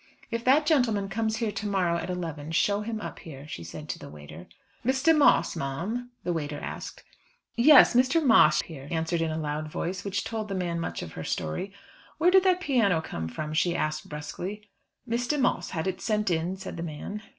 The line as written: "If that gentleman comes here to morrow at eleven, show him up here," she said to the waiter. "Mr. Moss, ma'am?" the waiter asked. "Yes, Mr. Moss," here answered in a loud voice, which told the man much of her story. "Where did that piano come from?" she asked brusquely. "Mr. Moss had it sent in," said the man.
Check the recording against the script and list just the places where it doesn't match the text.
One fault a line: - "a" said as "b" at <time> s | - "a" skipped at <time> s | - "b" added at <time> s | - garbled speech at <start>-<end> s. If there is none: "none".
none